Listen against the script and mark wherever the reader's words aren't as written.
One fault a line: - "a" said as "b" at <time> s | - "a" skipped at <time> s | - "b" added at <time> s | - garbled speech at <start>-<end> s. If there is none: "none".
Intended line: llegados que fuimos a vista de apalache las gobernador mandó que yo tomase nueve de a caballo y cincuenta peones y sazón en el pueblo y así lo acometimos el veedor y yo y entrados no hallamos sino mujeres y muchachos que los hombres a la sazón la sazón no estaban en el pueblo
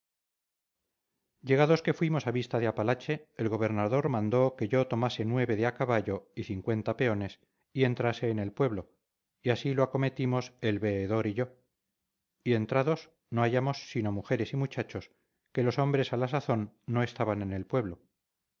- "las" said as "el" at 3.4 s
- "sazón" said as "entrase" at 7.8 s
- "la sazón" skipped at 16.8 s